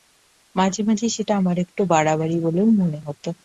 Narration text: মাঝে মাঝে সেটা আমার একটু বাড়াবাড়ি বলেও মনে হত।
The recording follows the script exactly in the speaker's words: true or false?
true